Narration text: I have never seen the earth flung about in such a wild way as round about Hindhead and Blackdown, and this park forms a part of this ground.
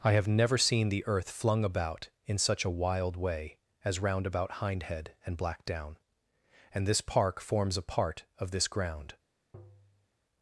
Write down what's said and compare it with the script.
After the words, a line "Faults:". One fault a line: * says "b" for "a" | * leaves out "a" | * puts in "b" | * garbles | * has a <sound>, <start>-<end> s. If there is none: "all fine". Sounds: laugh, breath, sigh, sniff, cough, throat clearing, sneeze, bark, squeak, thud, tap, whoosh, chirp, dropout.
I have never seen the earth flung about in such a wild way as round about Hindhead and Blackdown, and this park forms a part of this ground.
Faults:
* has a tap, 9.5-10.1 s